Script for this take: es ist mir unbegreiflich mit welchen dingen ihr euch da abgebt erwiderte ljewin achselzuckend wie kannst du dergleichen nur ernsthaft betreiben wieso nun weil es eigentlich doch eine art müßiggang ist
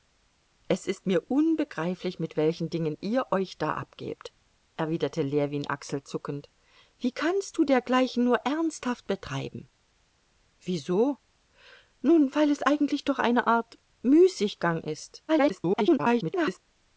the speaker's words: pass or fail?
fail